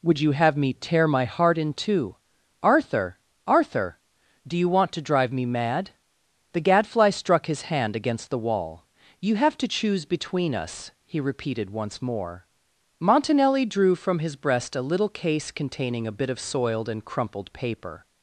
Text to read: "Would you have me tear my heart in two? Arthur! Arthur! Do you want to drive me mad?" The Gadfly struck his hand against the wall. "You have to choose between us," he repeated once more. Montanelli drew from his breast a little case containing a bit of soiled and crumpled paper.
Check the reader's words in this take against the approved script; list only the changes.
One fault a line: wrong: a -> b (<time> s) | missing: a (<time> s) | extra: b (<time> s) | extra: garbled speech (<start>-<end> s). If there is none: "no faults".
no faults